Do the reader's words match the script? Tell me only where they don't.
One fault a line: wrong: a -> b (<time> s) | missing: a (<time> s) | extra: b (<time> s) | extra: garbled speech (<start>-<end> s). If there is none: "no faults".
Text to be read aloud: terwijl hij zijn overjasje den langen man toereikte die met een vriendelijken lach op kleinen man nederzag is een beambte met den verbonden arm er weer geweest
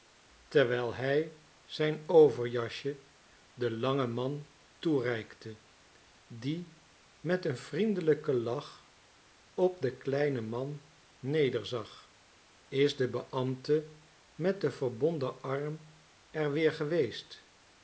extra: den (9.8 s)
wrong: een -> de (13.0 s)